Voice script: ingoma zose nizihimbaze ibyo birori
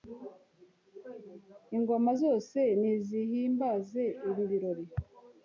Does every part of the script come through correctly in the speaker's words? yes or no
no